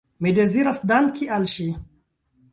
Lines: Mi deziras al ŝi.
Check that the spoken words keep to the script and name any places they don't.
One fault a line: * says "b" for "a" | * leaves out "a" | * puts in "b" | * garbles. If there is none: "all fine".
* puts in "danki"